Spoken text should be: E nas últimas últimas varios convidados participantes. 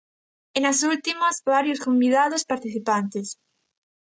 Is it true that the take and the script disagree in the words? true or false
true